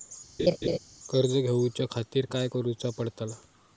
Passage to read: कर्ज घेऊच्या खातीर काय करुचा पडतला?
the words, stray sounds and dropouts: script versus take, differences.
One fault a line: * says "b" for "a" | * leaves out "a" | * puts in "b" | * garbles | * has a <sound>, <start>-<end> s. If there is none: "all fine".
* has a laugh, 0.4-0.8 s